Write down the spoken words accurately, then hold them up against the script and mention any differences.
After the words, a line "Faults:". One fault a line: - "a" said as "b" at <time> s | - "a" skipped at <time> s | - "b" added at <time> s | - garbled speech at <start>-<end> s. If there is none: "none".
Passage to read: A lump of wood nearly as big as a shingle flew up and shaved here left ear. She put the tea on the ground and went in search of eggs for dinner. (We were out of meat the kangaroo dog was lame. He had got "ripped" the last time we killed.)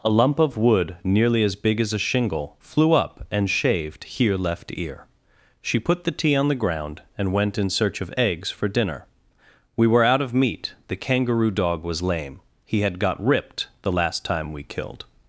A lump of wood nearly as big as a shingle flew up and shaved here left ear. She put the tea on the ground and went in search of eggs for dinner. (We were out of meat the kangaroo dog was lame. He had got "ripped" the last time we killed.)
Faults:
none